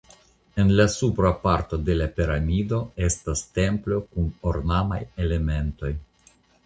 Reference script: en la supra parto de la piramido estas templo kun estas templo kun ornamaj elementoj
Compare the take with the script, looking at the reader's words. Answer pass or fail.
fail